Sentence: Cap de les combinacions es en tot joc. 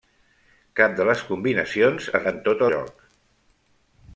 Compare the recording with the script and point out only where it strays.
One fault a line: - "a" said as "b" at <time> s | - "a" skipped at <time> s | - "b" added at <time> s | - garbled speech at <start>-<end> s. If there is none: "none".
none